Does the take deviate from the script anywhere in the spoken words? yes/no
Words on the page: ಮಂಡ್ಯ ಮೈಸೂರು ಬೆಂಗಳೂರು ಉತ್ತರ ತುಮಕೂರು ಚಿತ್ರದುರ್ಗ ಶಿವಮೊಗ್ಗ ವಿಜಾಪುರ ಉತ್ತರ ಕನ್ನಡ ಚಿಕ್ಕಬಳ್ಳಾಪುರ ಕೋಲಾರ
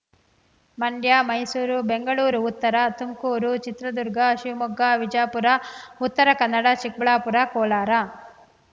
no